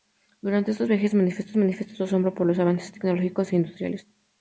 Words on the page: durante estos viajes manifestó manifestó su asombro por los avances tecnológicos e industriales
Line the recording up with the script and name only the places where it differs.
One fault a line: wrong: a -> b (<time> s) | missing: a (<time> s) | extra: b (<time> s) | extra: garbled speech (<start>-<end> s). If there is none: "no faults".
no faults